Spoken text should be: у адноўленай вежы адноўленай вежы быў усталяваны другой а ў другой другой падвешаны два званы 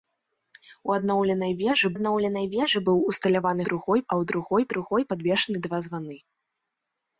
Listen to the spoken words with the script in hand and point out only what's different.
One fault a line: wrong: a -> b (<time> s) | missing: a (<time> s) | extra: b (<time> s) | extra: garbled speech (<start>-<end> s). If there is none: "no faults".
no faults